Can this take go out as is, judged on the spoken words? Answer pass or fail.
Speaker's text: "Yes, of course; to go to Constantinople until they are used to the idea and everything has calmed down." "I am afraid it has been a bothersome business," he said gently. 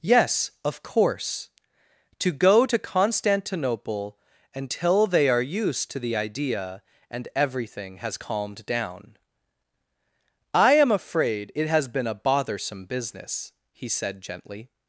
pass